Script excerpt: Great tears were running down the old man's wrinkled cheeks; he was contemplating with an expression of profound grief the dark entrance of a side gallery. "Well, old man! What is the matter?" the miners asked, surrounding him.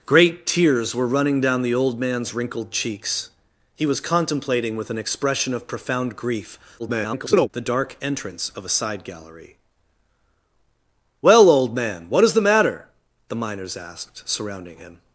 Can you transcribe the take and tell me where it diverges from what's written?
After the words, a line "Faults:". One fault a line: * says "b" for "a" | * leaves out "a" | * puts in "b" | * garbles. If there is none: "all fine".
Great tears were running down the old man's wrinkled cheeks; he was contemplating with an expression of profound grief [garbled] the dark entrance of a side gallery. "Well, old man! What is the matter?" the miners asked, surrounding him.
Faults:
* garbles